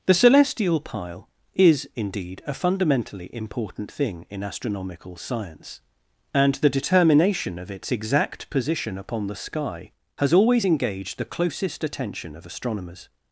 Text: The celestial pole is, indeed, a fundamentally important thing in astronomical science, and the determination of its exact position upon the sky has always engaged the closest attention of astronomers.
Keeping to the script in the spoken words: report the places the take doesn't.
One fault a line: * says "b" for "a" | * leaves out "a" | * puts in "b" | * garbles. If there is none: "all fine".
* says "pile" for "pole"